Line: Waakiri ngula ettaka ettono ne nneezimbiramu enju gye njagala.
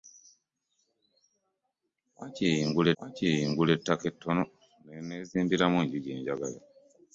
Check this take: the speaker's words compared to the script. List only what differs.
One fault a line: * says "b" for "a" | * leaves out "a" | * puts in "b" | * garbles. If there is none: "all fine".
* puts in "waakiri ngula"